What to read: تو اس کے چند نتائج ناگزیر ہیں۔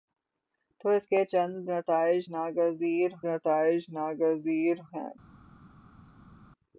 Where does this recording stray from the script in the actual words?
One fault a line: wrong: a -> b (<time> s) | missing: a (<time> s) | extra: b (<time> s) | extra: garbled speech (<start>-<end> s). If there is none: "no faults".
extra: نتائج ناگزیر (3.3 s)